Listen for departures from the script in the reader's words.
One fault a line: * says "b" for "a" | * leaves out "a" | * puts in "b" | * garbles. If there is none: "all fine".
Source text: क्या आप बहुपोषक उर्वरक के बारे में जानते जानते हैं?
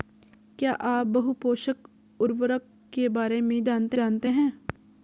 all fine